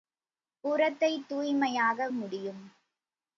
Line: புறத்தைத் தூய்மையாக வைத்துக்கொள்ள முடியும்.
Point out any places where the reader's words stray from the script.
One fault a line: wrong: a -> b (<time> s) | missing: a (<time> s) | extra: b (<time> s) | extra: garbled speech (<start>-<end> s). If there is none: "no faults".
missing: வைத்துக்கொள்ள (2.1 s)